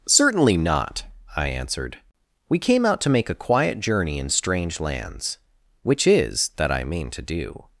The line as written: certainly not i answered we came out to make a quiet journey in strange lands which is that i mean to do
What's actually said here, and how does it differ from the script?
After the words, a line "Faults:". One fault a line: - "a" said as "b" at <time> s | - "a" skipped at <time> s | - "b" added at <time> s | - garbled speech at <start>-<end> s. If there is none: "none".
certainly not i answered we came out to make a quiet journey in strange lands which is that i mean to do
Faults:
none